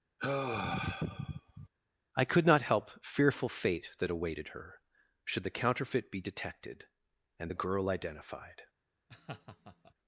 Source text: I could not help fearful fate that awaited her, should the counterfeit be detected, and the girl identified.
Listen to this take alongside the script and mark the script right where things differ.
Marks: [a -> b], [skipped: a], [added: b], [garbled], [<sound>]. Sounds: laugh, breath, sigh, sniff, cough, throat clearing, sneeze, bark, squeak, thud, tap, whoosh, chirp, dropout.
[sigh] I could not help fearful fate that awaited her, should the counterfeit be detected, and the girl identified. [laugh]